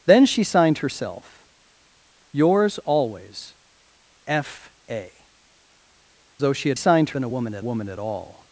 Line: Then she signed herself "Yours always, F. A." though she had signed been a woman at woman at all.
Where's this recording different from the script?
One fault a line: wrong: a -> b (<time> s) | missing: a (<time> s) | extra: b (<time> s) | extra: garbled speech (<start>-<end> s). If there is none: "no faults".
no faults